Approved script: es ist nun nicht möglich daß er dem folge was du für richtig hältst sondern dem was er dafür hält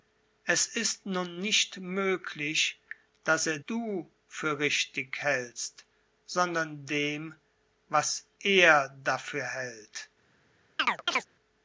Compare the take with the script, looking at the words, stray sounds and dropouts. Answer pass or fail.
fail